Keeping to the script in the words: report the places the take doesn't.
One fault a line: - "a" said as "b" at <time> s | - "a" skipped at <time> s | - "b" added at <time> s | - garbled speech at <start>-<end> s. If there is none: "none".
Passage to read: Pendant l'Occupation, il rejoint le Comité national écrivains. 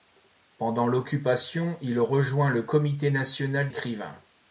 none